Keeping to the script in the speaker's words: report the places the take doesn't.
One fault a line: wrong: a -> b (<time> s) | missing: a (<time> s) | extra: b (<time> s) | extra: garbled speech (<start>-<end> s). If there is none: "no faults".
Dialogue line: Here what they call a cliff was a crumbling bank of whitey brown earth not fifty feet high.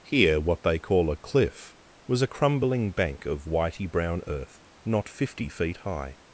no faults